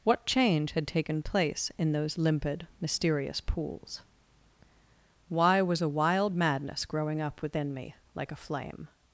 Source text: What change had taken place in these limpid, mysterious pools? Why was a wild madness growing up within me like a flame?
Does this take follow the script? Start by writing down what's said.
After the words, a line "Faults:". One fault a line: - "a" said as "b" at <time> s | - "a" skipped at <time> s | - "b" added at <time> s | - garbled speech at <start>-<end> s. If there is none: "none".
What change had taken place in those limpid, mysterious pools? Why was a wild madness growing up within me like a flame?
Faults:
- "these" said as "those" at 1.9 s